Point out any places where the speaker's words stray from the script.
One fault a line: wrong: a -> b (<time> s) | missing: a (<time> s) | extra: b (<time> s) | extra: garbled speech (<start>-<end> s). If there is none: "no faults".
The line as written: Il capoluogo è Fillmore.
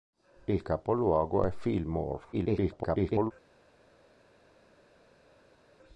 extra: garbled speech (2.3-3.3 s)